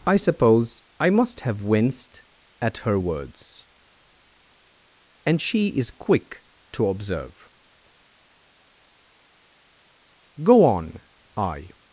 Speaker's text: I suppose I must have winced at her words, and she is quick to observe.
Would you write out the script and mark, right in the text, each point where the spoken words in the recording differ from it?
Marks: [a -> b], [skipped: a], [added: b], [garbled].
I suppose I must have winced at her words, and she is quick to observe. [added: Go on I]